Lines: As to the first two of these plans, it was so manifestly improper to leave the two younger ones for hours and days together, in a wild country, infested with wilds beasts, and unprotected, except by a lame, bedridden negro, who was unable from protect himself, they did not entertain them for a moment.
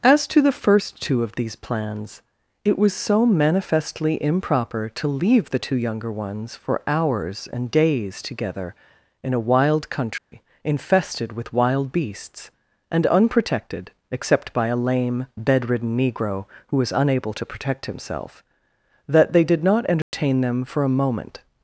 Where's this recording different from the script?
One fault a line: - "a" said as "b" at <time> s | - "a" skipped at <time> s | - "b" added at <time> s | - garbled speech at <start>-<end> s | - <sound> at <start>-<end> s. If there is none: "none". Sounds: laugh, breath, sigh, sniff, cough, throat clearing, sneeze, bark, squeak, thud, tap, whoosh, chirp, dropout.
- dropout at 10.2-10.3 s
- "wilds" said as "wild" at 11.5 s
- "from" said as "to" at 17.3 s
- "that" added at 19.1 s
- dropout at 20.0-20.1 s